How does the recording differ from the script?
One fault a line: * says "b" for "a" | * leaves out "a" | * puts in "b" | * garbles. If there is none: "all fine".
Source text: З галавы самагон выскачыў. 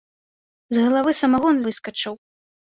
all fine